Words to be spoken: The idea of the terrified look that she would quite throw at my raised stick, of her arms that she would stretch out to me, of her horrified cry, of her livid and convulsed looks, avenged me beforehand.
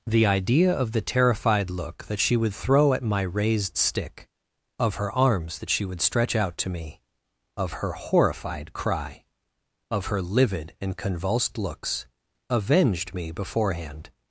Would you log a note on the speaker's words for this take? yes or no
yes